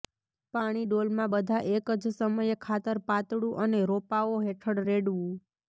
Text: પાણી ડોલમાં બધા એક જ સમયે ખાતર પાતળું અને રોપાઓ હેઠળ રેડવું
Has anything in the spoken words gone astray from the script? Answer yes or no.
no